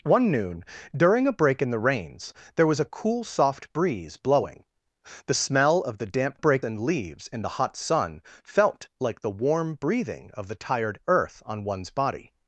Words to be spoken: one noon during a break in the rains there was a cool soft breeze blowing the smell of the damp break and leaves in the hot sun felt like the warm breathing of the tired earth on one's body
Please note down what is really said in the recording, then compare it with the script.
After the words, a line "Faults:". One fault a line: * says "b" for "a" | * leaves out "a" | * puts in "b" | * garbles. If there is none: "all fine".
one noon during a break in the rains there was a cool soft breeze blowing the smell of the damp break and leaves in the hot sun felt like the warm breathing of the tired earth on one's body
Faults:
all fine